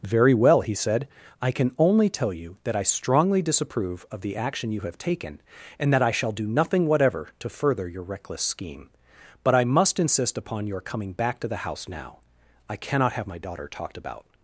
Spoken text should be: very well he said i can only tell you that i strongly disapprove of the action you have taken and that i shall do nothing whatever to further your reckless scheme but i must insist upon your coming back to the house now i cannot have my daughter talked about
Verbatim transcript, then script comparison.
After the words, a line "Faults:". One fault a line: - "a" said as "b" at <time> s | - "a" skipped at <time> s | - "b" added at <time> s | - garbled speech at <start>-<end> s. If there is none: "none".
very well he said i can only tell you that i strongly disapprove of the action you have taken and that i shall do nothing whatever to further your reckless scheme but i must insist upon your coming back to the house now i cannot have my daughter talked about
Faults:
none